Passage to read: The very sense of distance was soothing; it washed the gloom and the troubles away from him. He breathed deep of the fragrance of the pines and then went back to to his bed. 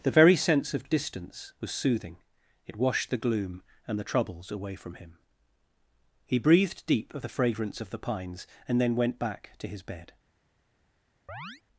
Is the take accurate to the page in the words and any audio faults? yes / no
no